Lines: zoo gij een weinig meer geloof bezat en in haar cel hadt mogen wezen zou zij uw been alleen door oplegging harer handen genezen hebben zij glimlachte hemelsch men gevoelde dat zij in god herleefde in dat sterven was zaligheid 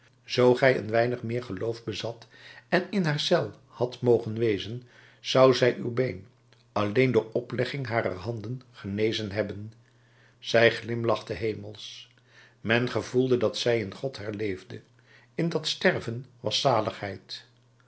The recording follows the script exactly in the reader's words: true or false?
true